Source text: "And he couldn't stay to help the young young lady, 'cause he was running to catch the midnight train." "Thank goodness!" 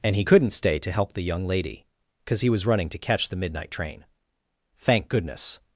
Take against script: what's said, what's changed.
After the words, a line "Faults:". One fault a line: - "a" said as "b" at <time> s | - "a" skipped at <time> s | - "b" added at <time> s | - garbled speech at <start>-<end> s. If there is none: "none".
"And he couldn't stay to help the young lady, 'cause he was running to catch the midnight train." "Thank goodness!"
Faults:
- "young" skipped at 1.5 s